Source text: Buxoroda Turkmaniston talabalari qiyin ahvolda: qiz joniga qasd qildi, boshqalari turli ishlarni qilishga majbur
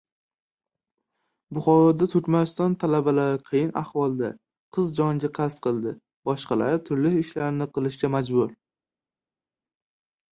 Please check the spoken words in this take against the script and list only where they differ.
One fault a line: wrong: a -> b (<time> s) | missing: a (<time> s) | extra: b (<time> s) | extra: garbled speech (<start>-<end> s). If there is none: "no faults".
no faults